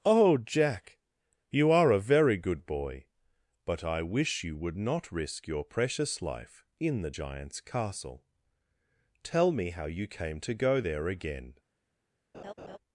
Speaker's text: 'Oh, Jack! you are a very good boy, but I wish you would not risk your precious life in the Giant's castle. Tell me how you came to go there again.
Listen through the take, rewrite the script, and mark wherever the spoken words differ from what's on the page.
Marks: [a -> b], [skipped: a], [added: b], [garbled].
'Oh, Jack! you are a very good boy, but I wish you would not risk your precious life in the Giant's castle. Tell me how you came to go there again.